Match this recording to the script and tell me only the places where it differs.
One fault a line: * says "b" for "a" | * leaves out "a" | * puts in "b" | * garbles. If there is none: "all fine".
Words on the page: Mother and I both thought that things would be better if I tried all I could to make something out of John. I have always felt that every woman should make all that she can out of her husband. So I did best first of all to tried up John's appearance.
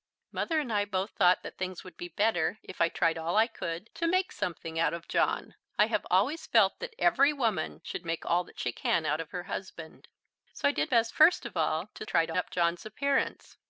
all fine